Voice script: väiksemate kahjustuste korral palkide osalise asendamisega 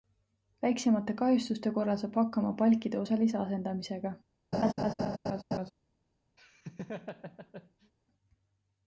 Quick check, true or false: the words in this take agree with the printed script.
false